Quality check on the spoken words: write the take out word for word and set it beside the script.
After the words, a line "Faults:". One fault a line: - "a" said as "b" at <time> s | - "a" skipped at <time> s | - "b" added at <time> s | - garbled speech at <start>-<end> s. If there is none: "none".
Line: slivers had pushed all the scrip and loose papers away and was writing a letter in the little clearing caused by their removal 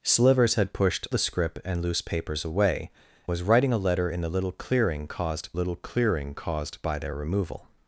slivers had pushed the scrip and loose papers away was writing a letter in the little clearing caused little clearing caused by their removal
Faults:
- "all" skipped at 1.1 s
- "and" skipped at 2.9 s
- "little clearing caused" added at 5.5 s